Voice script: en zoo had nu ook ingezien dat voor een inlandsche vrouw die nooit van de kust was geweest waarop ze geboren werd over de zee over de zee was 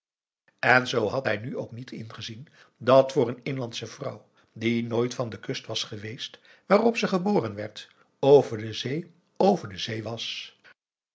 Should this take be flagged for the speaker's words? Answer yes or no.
yes